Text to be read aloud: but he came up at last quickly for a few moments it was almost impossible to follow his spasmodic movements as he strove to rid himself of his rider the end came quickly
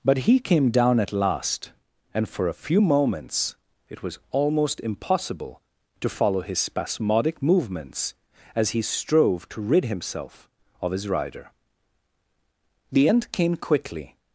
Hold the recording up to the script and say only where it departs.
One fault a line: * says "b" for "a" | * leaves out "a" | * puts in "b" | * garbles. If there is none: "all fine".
* says "down" for "up"
* says "and" for "quickly"